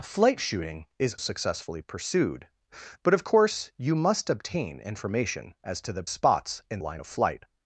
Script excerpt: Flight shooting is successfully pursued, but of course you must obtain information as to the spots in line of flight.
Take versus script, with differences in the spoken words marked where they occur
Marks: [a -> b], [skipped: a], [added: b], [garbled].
Flight shooting is successfully pursued, but of course you must obtain information as to the spots in line of flight.